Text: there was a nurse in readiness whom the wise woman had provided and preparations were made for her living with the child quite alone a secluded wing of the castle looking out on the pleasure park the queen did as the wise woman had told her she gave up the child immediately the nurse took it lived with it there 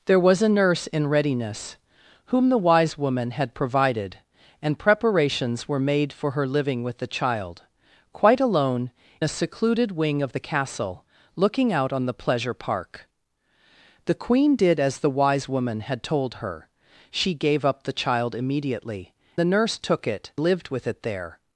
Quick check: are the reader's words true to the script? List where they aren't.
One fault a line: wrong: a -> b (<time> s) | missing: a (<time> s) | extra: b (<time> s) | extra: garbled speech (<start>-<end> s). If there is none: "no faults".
no faults